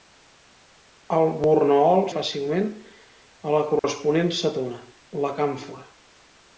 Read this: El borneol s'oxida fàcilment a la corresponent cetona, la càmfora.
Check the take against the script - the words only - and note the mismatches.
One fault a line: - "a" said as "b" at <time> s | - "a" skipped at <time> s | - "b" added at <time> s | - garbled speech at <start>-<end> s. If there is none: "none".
- "s'oxida" skipped at 2.0 s